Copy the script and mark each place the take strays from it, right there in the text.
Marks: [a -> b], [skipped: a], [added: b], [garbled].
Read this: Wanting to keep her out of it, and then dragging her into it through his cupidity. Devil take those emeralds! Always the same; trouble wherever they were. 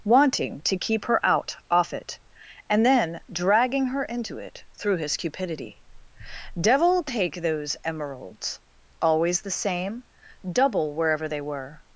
Wanting to keep her out [of -> off] it, and then dragging her into it through his cupidity. Devil take those emeralds! Always the same; [trouble -> double] wherever they were.